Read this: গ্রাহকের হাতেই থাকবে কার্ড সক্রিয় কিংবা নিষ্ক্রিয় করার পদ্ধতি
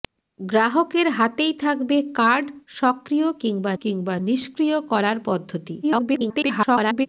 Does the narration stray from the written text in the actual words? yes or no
yes